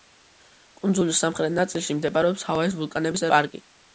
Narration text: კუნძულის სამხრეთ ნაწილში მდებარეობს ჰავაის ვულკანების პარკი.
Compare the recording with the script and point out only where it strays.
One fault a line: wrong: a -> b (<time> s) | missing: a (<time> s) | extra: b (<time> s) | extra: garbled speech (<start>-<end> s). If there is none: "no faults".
no faults